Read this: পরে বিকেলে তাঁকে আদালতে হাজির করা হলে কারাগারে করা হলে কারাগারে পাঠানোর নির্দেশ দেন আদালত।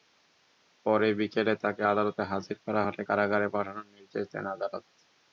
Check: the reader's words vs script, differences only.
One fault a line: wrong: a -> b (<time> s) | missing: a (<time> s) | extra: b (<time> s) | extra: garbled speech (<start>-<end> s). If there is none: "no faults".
missing: করা হলে কারাগারে (3.5 s)